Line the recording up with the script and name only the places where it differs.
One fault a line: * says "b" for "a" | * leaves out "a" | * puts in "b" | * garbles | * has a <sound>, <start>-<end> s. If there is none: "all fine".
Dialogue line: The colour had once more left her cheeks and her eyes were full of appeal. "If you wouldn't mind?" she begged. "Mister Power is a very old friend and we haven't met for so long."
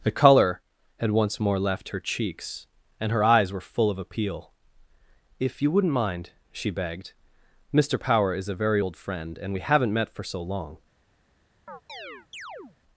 * has a chirp, 11.7-12.8 s